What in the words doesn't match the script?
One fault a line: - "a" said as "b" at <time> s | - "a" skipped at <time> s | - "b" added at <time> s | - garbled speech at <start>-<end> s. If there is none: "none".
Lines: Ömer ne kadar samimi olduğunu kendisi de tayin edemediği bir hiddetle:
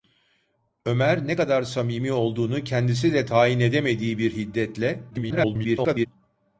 - garbled speech at 5.1-6.1 s